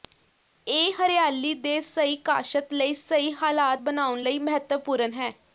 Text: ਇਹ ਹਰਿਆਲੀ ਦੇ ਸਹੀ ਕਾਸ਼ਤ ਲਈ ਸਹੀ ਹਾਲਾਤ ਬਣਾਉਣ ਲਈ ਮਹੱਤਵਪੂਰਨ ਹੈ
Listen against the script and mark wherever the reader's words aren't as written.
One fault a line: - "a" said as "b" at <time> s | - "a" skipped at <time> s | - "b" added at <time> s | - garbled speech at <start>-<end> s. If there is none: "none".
none